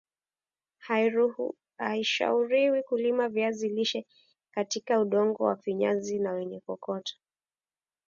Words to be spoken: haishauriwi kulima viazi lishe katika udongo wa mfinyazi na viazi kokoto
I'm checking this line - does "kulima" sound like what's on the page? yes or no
yes